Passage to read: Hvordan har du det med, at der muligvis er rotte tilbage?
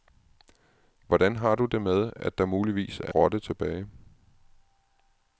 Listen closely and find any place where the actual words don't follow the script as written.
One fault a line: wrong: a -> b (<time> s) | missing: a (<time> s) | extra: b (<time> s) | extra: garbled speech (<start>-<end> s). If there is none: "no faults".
no faults